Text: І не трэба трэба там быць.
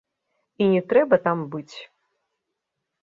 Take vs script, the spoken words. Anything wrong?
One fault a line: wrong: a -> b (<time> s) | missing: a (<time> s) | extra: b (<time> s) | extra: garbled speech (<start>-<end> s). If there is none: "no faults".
missing: трэба (1.1 s)